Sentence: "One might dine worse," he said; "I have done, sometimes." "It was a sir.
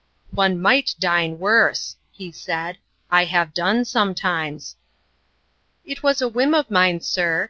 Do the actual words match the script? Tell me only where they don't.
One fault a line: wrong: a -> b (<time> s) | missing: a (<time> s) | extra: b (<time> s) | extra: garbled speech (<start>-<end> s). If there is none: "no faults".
extra: whim of mine (6.3 s)